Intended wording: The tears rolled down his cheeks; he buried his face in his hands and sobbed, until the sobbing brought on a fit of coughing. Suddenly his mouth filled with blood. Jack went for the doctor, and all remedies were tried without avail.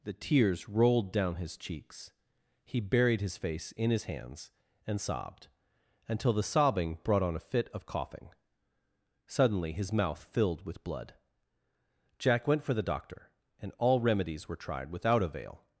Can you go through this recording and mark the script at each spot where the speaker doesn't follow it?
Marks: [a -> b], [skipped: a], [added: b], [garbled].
The tears rolled down his cheeks; he buried his face in his hands and sobbed, until the sobbing brought on a fit of coughing. Suddenly his mouth filled with blood. Jack went for the doctor, and all remedies were tried without avail.